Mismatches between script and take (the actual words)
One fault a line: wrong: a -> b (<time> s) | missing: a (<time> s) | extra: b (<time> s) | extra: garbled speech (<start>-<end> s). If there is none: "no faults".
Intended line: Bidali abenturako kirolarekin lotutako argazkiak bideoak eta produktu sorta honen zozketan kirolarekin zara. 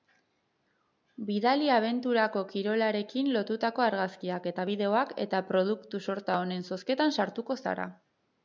extra: eta (4.5 s)
wrong: kirolarekin -> sartuko (7.2 s)